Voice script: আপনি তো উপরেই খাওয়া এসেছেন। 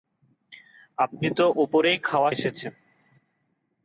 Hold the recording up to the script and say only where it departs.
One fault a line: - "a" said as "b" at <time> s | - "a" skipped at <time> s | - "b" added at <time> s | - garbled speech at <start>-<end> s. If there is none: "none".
none